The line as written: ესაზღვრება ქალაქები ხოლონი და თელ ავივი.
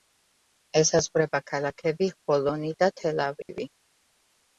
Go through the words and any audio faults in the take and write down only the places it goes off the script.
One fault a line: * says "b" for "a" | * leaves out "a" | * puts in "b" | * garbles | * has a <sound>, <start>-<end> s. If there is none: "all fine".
* has a dropout, 3.4-3.5 s